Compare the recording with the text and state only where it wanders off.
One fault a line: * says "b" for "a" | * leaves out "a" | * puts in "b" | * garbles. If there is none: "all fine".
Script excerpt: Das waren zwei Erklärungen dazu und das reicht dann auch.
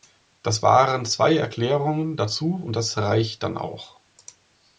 all fine